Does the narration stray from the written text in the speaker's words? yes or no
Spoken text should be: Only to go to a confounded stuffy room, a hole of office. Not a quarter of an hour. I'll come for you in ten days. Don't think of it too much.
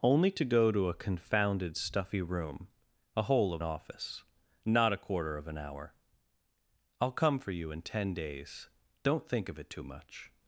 no